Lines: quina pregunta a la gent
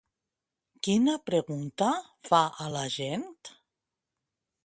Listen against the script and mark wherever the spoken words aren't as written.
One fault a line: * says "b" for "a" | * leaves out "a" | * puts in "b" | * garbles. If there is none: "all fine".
* puts in "fa"